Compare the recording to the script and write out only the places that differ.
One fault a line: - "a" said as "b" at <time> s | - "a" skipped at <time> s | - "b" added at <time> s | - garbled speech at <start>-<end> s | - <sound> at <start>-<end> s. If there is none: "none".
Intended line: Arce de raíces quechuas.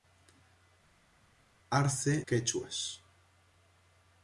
- "de raíces" skipped at 2.2 s